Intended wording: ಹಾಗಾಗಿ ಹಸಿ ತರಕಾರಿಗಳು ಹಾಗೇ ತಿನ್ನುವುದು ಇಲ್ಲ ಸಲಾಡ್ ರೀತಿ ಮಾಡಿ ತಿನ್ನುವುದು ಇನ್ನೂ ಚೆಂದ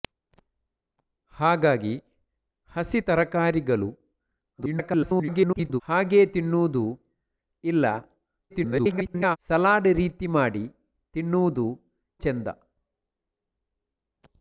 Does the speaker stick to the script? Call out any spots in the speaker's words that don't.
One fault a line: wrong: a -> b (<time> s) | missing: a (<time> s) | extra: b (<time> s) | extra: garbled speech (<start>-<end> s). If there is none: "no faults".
extra: garbled speech (4.6-5.8 s)
extra: garbled speech (8.5-9.4 s)
missing: ಇನ್ನೂ (11.7 s)